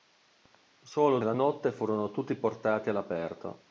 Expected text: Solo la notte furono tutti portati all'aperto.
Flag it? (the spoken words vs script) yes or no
no